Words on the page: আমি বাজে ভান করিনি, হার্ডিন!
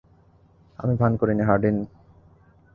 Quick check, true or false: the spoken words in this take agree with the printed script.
false